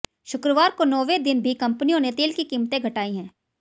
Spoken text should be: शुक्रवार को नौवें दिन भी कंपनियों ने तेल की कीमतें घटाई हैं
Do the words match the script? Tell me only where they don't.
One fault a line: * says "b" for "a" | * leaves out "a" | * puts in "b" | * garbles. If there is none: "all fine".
all fine